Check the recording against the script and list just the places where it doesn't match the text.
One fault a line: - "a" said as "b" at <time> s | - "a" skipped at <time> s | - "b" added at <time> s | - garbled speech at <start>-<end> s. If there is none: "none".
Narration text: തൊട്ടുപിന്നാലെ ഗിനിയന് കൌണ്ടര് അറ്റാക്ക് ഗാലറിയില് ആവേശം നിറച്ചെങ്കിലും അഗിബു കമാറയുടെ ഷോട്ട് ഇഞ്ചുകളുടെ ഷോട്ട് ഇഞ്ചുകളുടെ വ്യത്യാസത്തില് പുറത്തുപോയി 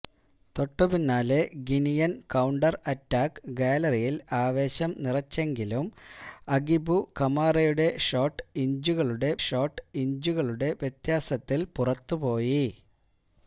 none